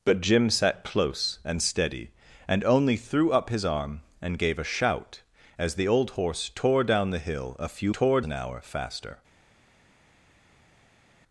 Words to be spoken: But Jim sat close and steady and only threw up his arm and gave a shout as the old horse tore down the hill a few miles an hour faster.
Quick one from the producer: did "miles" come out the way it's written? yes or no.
no